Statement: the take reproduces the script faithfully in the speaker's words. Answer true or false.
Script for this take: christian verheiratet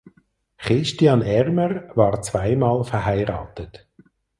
false